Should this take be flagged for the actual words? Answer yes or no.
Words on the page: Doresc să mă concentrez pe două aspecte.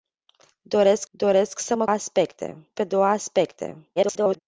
yes